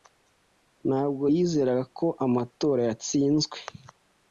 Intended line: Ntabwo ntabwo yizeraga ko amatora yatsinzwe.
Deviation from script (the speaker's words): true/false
true